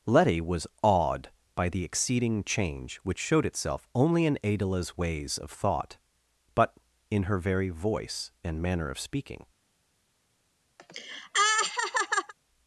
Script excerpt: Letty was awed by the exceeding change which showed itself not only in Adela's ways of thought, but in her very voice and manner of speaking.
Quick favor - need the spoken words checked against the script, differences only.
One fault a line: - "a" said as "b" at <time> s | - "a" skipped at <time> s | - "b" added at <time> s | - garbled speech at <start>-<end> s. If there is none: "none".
- "not" skipped at 3.9 s